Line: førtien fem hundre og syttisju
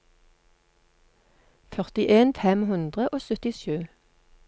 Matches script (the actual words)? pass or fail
pass